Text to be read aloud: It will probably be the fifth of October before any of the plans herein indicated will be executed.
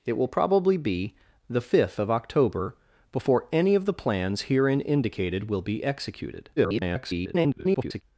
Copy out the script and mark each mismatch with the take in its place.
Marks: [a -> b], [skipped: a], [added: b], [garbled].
It will probably be the fifth of October before any of the plans herein indicated will be executed. [garbled]